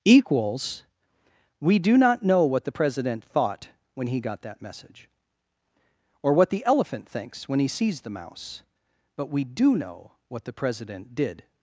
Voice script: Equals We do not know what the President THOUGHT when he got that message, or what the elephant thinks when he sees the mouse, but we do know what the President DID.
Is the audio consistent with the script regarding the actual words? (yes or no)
yes